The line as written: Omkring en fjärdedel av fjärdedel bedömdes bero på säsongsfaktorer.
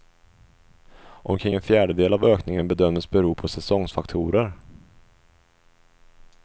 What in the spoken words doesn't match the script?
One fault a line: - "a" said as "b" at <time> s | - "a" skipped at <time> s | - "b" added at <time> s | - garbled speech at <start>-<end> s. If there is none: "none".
- "fjärdedel" said as "ökningen" at 2.2 s